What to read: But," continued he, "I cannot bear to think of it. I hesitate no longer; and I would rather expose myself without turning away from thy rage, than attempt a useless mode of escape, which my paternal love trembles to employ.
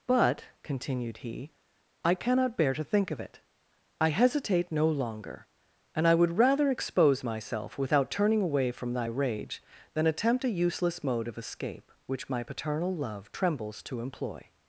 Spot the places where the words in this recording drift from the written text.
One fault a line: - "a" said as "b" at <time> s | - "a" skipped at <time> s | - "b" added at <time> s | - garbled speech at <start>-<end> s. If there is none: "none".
none